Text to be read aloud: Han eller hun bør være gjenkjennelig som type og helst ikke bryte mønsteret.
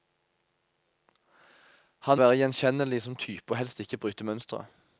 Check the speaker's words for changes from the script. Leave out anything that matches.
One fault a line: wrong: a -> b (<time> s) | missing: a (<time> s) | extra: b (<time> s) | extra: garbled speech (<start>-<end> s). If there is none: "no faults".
missing: eller hun bør (2.2 s)